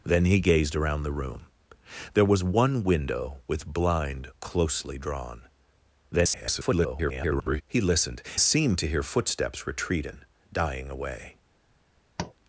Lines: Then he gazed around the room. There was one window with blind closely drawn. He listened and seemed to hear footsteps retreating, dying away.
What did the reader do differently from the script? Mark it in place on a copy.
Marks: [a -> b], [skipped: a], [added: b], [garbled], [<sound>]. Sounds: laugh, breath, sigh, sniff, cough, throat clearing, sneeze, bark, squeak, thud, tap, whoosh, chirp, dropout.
Then he gazed around the room. There was one window with blind closely drawn. [garbled] He listened [skipped: and] seemed to hear footsteps retreating, dying away. [tap]